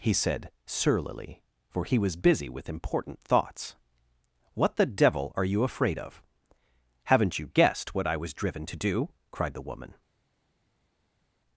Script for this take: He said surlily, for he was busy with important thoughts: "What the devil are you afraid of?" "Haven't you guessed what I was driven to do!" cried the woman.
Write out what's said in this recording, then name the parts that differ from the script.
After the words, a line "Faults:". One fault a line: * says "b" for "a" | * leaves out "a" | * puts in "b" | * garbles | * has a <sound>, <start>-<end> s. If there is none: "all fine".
He said surlily, for he was busy with important thoughts: "What the devil are you afraid of?" "Haven't you guessed what I was driven to do!" cried the woman.
Faults:
all fine